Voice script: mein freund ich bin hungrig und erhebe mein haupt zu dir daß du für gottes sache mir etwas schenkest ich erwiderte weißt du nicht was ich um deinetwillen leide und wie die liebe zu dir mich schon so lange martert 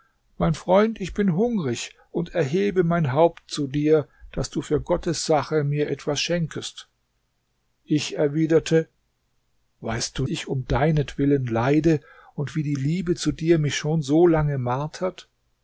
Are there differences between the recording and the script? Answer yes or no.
yes